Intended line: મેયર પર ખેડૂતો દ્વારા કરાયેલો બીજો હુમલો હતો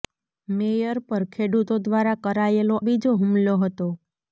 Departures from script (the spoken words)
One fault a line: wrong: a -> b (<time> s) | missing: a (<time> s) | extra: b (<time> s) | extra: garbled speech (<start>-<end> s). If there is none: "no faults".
no faults